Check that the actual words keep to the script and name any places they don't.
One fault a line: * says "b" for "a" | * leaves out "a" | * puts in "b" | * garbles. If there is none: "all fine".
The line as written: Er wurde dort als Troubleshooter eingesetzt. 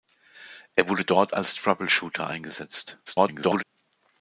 * garbles